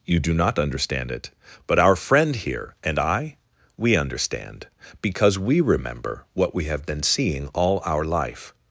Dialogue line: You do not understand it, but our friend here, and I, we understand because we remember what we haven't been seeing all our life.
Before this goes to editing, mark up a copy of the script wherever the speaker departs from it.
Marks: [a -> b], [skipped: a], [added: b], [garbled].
You do not understand it, but our friend here, and I, we understand because we remember what we [haven't -> have] been seeing all our life.